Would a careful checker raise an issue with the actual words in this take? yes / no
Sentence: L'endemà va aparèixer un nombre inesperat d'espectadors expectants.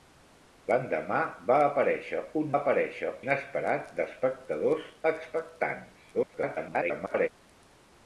yes